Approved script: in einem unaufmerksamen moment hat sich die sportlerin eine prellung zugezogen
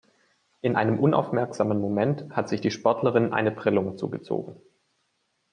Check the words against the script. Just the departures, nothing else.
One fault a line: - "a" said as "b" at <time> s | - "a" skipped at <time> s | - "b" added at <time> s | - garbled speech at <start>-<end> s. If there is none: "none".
none